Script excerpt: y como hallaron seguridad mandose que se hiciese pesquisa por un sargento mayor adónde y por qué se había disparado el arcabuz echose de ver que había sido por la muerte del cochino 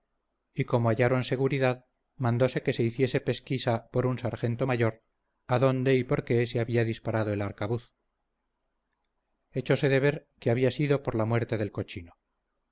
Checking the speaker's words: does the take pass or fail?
pass